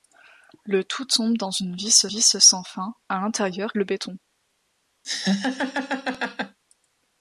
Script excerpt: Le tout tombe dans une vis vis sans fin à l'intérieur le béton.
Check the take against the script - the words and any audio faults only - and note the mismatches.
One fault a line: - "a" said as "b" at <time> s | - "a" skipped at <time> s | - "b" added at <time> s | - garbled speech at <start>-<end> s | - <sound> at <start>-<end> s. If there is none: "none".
- laugh at 5.0-6.6 s